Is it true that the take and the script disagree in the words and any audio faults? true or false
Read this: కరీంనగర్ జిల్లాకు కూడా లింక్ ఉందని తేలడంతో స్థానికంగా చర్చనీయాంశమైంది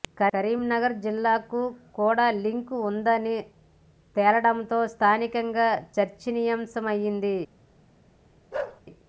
true